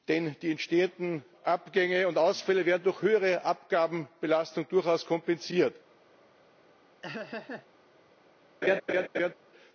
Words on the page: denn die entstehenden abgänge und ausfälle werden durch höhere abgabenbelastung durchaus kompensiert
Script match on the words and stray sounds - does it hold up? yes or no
no